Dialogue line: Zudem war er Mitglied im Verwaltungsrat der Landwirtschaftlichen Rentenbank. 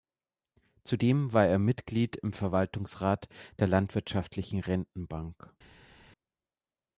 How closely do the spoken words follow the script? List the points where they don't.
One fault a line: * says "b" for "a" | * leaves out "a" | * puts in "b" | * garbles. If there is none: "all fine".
all fine